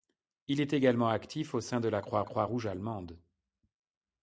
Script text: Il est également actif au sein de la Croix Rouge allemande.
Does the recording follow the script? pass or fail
fail